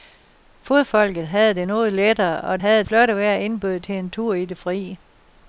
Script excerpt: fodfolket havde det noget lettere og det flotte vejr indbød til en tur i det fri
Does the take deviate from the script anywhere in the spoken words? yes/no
yes